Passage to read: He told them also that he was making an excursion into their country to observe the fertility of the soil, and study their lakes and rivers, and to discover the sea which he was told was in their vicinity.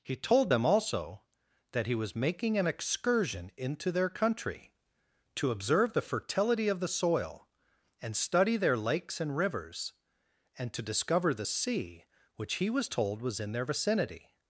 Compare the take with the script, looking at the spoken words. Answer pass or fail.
pass